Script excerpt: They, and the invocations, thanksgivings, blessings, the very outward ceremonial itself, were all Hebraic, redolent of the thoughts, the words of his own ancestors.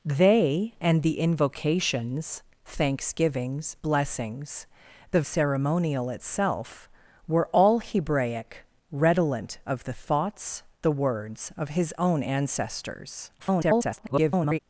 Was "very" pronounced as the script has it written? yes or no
no